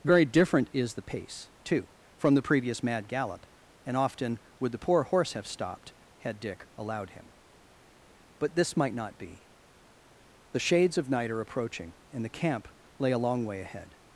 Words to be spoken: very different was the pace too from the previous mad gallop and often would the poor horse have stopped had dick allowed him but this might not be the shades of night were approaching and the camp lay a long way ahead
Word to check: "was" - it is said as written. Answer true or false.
false